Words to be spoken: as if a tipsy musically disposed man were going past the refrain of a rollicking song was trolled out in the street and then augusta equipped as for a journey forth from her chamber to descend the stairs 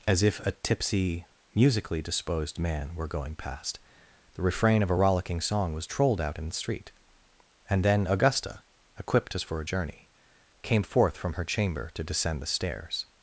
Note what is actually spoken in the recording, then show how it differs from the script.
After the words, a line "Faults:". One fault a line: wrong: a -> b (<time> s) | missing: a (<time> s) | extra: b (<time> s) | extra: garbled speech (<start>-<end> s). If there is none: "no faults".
as if a tipsy musically disposed man were going past the refrain of a rollicking song was trolled out in the street and then augusta equipped as for a journey came forth from her chamber to descend the stairs
Faults:
extra: came (10.6 s)